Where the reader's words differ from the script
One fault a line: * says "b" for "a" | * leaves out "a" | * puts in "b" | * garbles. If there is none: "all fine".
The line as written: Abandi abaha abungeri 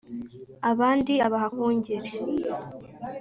all fine